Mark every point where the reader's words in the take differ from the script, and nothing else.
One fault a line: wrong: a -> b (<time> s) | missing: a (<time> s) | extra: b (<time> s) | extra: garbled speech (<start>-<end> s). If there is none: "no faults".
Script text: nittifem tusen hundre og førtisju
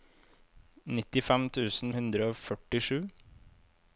no faults